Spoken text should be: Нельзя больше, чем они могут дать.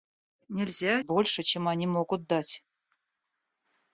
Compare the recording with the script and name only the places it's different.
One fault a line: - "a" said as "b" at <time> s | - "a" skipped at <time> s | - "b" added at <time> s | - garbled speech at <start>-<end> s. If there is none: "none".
none